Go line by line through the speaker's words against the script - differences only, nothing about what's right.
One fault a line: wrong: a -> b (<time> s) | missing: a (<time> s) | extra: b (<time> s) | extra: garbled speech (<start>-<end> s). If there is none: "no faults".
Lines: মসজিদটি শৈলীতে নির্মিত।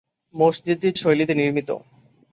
no faults